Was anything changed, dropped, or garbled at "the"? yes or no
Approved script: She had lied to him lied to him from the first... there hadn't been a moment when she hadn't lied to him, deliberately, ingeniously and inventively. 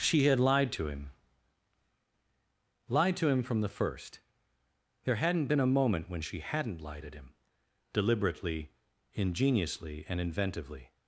no